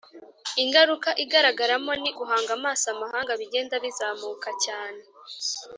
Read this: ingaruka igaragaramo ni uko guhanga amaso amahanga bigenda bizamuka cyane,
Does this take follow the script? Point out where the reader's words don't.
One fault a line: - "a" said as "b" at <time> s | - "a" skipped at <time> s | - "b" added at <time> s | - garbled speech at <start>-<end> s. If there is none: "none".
- "uko" skipped at 2.1 s